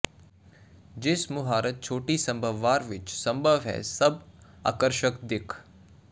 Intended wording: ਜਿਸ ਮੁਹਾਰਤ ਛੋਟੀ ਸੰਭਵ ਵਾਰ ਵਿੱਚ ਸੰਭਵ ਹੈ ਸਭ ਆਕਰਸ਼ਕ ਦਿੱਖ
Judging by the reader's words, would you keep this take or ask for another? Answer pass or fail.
pass